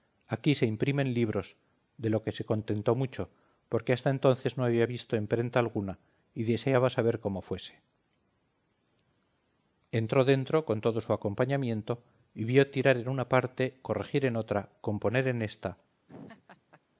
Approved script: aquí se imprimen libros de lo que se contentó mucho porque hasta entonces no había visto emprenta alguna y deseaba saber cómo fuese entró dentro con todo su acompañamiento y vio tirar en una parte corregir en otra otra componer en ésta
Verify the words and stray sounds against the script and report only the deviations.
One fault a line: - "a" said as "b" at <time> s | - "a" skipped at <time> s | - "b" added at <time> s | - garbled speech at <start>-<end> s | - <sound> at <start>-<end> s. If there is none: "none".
- "otra" skipped at 14.7 s
- laugh at 16.1-16.8 s